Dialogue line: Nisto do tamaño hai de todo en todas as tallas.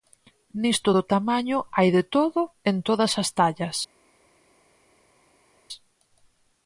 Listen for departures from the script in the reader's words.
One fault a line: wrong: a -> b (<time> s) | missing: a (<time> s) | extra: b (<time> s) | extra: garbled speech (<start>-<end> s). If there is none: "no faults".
no faults